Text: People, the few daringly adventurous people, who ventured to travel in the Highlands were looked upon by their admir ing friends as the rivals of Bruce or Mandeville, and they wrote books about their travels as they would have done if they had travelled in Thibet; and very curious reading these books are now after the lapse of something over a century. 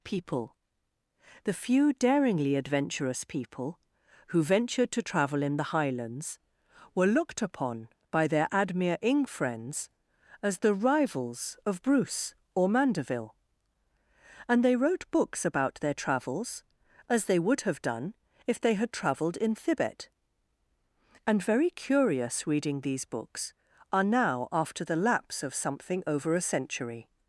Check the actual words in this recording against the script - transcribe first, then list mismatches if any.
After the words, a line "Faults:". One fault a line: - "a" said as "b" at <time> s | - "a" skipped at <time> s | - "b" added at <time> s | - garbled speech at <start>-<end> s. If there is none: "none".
People, the few daringly adventurous people, who ventured to travel in the Highlands were looked upon by their admir ing friends as the rivals of Bruce or Mandeville, and they wrote books about their travels as they would have done if they had travelled in Thibet; and very curious reading these books are now after the lapse of something over a century.
Faults:
none